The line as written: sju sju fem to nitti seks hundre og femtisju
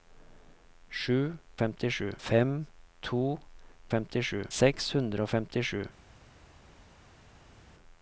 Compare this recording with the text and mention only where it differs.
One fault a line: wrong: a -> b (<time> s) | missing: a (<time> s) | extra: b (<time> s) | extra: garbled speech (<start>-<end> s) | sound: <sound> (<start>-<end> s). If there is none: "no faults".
wrong: sju -> femtisju (1.6 s)
wrong: nitti -> femtisju (3.9 s)